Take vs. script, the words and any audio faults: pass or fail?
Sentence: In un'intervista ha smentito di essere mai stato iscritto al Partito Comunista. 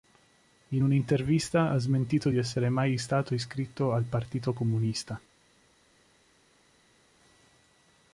pass